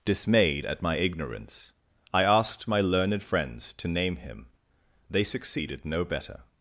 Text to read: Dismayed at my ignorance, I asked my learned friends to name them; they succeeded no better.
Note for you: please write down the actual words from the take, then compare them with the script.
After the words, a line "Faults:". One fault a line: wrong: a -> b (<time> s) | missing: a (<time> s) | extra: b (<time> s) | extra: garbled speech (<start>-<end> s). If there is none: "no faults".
Dismayed at my ignorance, I asked my learned friends to name him; they succeeded no better.
Faults:
wrong: them -> him (4.2 s)